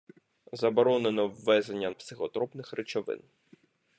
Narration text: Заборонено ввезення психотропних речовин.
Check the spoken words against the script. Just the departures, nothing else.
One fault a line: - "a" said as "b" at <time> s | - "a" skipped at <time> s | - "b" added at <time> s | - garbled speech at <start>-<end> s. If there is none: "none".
none